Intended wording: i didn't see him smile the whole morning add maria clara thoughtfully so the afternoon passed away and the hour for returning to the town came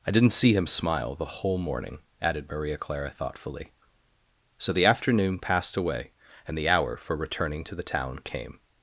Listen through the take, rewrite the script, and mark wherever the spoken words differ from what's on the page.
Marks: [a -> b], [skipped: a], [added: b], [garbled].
i didn't see him smile the whole morning [add -> added] maria clara thoughtfully so the afternoon passed away and the hour for returning to the town came